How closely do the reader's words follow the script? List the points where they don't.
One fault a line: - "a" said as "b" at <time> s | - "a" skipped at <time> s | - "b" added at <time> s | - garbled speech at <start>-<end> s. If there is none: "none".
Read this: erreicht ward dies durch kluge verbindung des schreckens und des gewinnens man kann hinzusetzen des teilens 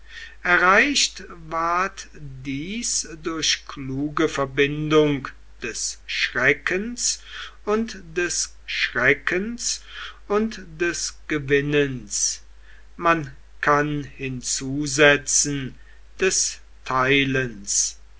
- "schreckens und des" added at 8.6 s